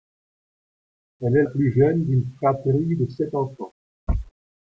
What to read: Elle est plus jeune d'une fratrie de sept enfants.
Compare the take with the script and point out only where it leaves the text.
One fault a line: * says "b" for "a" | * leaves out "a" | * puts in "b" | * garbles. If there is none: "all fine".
all fine